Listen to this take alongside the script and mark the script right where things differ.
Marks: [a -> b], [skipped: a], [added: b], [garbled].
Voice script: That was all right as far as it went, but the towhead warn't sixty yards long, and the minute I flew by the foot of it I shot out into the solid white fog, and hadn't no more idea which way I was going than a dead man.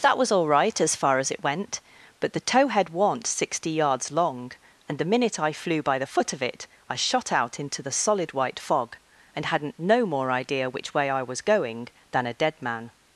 That was all right as far as it went, but the towhead warn't sixty yards long, and the minute I flew by the foot of it I shot out into the solid white fog, and hadn't no more idea which way I was going than a dead man.